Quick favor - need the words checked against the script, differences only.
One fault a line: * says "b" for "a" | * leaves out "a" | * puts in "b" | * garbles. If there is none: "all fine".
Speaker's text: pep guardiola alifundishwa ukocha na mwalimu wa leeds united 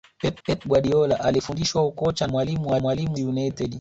* puts in "pep"
* leaves out "na"
* says "mwalimu" for "leeds"